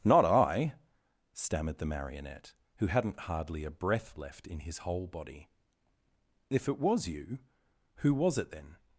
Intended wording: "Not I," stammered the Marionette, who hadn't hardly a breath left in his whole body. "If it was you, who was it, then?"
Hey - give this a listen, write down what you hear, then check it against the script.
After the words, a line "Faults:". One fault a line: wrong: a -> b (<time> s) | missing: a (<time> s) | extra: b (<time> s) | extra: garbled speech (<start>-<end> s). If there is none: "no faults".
"Not I," stammered the Marionette, who hadn't hardly a breath left in his whole body. "If it was you, who was it, then?"
Faults:
no faults